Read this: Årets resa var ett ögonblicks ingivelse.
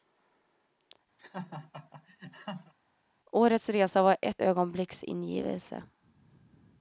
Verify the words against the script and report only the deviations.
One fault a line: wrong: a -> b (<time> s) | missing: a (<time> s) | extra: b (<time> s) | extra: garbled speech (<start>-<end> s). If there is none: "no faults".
no faults